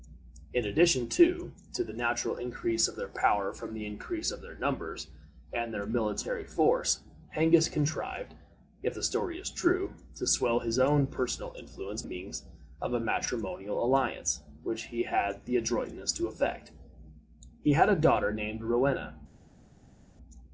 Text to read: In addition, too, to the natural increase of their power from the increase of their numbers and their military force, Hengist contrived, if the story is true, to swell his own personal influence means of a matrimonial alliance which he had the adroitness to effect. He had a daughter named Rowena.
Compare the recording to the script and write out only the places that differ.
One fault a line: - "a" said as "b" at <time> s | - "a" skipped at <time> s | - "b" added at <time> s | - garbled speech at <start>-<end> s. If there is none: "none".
none